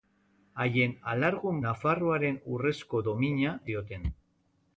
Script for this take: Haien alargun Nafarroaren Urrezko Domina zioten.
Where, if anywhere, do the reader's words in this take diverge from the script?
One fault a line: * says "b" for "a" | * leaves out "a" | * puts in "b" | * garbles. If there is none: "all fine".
all fine